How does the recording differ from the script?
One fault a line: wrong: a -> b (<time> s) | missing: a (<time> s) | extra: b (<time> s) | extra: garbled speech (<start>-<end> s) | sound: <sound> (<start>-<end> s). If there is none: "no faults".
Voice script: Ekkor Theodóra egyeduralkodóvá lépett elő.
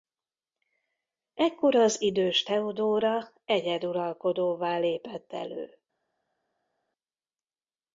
extra: az idős (1.8 s)